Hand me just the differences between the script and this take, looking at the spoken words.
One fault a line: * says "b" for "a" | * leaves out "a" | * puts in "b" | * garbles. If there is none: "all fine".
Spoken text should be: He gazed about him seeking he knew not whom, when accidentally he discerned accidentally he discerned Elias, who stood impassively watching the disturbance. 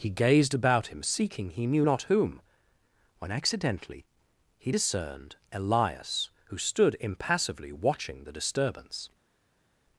* leaves out "accidentally he discerned"